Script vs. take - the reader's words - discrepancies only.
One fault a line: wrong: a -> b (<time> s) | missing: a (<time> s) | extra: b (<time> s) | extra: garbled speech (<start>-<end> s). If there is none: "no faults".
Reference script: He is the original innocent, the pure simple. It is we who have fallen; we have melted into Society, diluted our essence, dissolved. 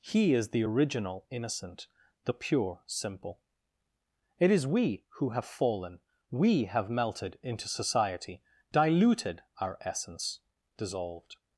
no faults